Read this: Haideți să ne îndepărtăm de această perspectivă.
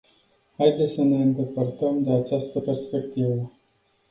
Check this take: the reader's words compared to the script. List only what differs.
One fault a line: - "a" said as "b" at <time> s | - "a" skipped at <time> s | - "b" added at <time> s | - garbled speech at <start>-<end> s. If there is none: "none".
none